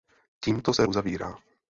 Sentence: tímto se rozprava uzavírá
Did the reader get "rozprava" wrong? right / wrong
wrong